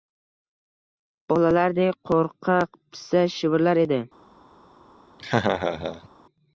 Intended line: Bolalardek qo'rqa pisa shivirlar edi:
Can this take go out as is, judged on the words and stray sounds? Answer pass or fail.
fail